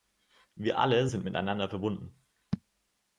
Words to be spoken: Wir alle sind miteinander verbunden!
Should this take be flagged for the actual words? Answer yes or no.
no